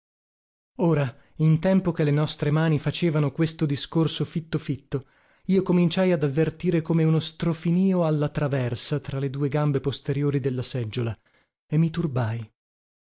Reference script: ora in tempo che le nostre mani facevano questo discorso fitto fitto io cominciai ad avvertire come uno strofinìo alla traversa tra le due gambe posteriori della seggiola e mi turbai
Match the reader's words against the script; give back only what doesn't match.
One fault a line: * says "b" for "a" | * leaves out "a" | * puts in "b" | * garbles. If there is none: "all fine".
all fine